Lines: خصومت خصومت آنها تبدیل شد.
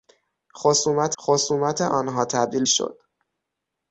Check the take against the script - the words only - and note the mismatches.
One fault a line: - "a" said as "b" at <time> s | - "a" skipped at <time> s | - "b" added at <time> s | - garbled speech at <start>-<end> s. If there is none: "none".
none